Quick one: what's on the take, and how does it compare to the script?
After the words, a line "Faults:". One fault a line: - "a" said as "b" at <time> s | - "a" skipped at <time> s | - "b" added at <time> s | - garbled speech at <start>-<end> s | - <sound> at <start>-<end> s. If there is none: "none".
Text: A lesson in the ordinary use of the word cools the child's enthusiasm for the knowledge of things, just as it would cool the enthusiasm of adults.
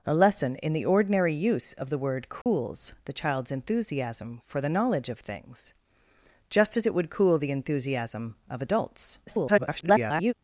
A lesson in the ordinary use of the word cools the child's enthusiasm for the knowledge of things, just as it would cool the enthusiasm of adults. [garbled]
Faults:
- dropout at 2.4-2.5 s
- garbled speech at 9.3-10.3 s